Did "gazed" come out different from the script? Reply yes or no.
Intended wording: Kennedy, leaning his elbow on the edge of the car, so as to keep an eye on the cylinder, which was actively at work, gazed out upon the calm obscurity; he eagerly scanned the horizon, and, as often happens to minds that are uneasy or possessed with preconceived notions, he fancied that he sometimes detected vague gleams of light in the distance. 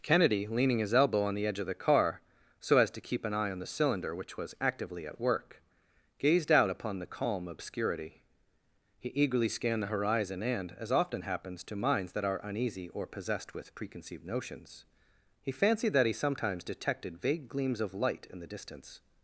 no